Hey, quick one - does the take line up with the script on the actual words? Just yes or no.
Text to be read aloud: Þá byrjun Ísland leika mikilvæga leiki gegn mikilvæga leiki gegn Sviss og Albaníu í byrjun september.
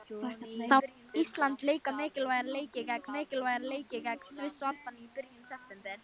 yes